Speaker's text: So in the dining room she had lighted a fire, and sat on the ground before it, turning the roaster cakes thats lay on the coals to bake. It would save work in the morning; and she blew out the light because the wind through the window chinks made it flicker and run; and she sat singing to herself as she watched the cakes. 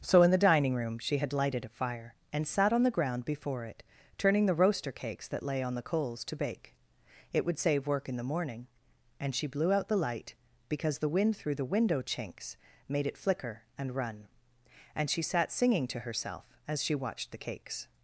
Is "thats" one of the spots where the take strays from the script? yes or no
yes